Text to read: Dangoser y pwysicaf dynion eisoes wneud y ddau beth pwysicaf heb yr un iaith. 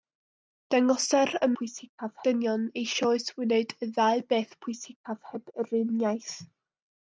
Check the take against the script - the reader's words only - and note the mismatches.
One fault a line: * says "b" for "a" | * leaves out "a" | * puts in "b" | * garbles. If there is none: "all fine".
all fine